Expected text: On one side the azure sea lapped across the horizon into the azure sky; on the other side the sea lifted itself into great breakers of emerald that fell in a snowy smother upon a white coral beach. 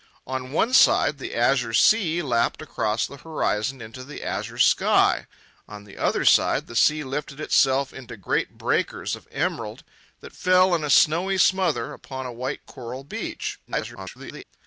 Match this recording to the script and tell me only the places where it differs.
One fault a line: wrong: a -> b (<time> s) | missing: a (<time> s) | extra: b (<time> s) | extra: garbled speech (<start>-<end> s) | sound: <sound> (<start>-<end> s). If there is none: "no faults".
extra: garbled speech (13.7-14.4 s)